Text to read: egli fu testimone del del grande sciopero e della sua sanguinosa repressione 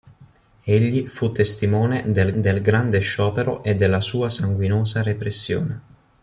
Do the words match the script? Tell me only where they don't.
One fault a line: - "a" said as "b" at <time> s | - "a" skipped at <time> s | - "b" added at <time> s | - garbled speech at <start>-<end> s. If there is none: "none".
none